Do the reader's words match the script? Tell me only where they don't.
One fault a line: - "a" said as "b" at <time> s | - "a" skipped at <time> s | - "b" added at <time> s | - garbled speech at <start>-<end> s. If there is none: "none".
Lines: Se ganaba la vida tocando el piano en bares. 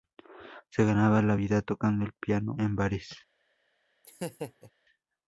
none